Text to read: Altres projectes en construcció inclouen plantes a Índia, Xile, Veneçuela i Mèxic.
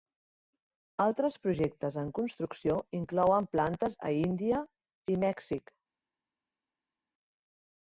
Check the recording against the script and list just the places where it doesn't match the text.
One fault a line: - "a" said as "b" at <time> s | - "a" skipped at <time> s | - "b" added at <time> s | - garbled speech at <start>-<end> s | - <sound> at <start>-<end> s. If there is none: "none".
- "Xile Veneçuela" skipped at 4.7 s